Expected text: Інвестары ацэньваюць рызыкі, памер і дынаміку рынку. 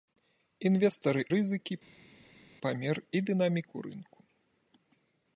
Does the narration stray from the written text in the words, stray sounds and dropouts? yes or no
yes